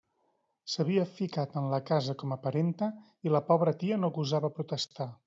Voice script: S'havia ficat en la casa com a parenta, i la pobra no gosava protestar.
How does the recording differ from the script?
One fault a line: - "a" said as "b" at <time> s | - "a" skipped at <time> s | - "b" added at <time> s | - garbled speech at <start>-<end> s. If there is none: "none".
- "tia" added at 3.8 s